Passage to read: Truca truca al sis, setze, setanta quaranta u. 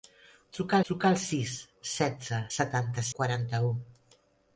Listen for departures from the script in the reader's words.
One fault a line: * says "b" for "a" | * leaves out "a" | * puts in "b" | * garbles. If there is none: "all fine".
all fine